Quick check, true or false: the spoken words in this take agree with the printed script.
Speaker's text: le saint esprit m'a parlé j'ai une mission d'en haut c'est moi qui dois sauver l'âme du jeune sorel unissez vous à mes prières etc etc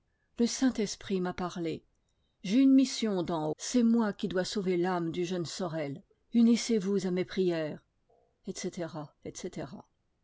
false